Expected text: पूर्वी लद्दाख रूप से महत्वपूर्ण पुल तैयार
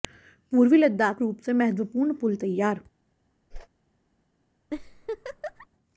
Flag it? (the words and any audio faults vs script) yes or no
yes